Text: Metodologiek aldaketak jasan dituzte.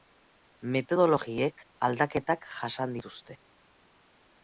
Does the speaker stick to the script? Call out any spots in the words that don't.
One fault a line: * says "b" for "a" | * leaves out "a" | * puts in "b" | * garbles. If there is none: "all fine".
all fine